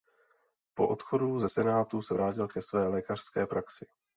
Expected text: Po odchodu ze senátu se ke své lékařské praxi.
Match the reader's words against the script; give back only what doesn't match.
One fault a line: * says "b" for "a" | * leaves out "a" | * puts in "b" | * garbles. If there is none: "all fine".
* puts in "vrátil"